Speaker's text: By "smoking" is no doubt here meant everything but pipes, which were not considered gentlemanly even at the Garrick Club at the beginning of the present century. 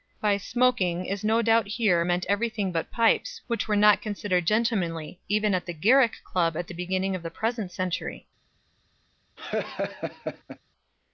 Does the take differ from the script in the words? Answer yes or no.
no